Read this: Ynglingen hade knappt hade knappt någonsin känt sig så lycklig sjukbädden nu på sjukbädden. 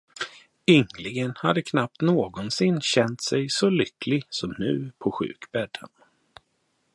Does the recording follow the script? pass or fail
fail